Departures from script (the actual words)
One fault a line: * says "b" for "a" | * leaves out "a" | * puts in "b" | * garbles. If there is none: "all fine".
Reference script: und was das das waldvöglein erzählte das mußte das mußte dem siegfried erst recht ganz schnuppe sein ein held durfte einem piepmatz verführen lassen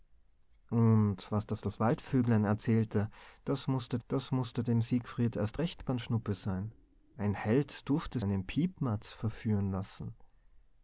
all fine